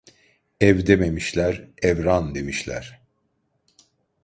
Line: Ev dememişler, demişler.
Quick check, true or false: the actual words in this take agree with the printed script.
false